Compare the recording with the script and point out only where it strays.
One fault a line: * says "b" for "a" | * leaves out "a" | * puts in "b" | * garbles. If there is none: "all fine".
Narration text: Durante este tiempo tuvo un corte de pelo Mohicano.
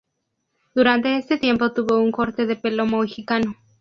all fine